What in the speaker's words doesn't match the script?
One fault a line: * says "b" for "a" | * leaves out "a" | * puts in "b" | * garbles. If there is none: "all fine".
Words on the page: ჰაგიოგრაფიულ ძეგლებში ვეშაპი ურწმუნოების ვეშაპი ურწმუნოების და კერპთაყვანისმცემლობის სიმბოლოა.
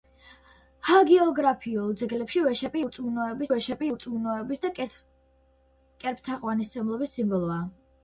all fine